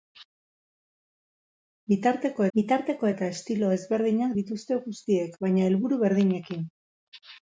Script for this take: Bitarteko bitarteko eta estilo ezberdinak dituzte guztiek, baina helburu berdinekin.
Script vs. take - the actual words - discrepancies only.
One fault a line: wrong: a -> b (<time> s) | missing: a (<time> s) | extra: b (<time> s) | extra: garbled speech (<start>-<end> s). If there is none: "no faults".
no faults